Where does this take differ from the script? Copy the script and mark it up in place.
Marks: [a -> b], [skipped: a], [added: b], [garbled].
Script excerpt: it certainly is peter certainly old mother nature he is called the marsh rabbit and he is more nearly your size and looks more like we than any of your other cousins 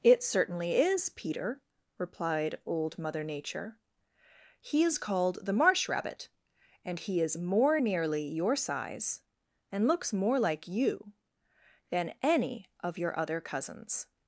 it certainly is peter [certainly -> replied] old mother nature he is called the marsh rabbit and he is more nearly your size and looks more like [we -> you] than any of your other cousins